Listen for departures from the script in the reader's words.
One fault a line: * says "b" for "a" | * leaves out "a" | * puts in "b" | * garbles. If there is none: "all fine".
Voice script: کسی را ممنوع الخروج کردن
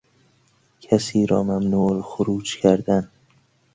all fine